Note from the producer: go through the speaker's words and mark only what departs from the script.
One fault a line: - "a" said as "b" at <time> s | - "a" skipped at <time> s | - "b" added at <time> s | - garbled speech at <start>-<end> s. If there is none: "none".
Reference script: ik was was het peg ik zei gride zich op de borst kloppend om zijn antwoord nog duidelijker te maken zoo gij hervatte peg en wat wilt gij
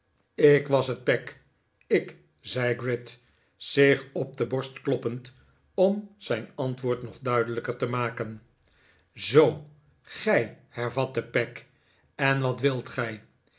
- "was" skipped at 0.9 s